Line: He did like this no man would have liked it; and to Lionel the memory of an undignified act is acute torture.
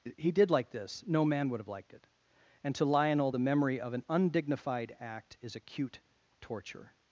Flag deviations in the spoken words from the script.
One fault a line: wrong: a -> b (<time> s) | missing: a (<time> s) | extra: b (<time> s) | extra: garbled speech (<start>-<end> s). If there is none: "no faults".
no faults